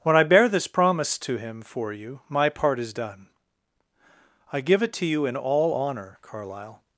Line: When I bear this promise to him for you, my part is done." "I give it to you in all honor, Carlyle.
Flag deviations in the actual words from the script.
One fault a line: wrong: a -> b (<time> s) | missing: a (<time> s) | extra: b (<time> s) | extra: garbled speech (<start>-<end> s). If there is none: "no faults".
no faults